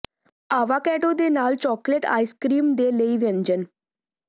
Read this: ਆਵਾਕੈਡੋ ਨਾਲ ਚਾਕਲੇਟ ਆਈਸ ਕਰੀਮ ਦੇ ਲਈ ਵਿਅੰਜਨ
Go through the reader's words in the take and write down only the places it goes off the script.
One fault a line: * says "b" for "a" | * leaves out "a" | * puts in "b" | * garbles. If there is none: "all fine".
* puts in "ਦੇ"